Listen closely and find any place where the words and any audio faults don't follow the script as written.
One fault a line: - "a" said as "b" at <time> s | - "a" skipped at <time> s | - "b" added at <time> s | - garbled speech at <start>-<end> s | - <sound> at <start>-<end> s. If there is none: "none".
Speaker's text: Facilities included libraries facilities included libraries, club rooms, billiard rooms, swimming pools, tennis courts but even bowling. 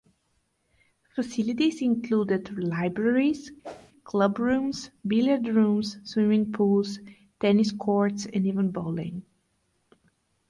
- "facilities included libraries" skipped at 3.5 s
- whoosh at 3.6-3.9 s
- "but" said as "and" at 8.3 s